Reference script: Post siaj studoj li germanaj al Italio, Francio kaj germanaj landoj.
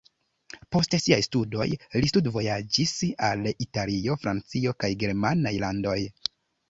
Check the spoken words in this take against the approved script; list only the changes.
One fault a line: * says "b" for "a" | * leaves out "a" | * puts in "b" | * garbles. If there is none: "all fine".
* says "studvojaĝis" for "germanaj"